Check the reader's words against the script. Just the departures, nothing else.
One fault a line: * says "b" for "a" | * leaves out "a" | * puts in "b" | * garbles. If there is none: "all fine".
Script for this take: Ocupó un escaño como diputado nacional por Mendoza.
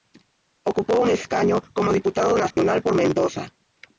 all fine